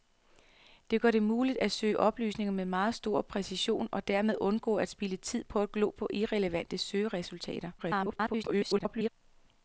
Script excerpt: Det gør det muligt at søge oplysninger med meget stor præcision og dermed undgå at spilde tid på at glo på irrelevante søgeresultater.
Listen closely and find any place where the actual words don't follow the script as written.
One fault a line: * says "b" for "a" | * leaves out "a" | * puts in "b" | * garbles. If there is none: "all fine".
* garbles